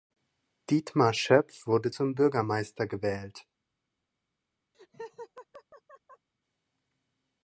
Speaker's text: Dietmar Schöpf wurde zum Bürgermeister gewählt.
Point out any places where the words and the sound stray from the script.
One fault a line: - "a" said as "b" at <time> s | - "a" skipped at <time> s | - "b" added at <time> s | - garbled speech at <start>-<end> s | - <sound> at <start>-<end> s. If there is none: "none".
- laugh at 4.7-6.3 s